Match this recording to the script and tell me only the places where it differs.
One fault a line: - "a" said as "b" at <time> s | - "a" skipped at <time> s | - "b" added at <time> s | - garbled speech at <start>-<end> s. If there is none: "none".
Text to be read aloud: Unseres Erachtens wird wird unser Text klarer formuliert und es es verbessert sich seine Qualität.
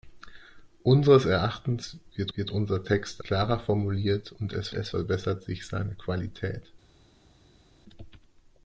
none